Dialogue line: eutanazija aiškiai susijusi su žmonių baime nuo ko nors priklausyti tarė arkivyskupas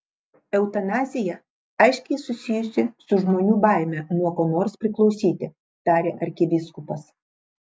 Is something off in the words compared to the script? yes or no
no